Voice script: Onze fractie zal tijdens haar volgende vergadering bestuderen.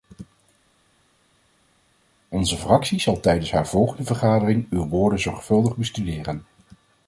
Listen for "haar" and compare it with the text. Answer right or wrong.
right